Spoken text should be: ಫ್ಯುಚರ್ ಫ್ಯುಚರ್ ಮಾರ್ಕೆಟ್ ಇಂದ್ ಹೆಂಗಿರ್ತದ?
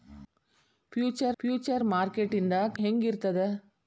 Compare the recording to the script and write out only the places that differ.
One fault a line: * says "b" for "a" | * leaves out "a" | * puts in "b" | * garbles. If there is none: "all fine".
all fine